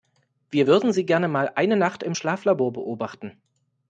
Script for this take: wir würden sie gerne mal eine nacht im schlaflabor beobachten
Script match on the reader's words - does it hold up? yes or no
yes